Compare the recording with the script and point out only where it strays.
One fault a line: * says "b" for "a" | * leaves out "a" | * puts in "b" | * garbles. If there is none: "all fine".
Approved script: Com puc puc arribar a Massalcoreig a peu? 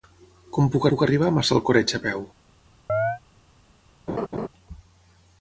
all fine